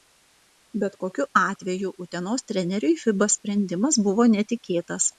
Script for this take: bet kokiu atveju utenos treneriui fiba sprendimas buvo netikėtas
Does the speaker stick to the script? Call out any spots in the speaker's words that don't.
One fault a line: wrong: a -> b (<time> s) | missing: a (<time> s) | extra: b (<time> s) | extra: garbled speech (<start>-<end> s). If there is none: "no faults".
no faults